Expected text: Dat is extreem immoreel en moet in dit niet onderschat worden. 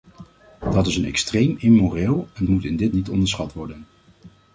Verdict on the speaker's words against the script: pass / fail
pass